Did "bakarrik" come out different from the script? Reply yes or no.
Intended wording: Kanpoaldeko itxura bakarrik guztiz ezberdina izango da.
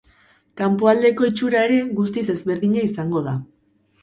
yes